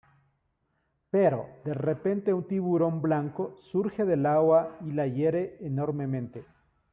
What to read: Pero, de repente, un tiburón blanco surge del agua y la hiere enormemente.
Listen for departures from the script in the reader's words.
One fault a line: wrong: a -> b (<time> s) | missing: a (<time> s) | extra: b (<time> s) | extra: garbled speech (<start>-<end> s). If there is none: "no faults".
no faults